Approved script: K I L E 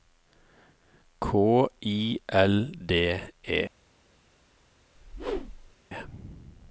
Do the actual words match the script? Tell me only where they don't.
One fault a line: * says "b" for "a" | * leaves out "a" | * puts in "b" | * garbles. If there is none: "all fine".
* puts in "D"